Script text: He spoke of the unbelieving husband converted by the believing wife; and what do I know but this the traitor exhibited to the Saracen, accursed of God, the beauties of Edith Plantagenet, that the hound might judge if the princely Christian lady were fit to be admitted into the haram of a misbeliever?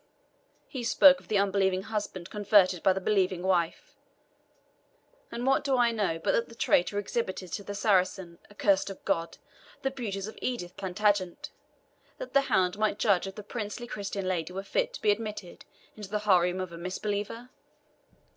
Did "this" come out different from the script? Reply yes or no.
yes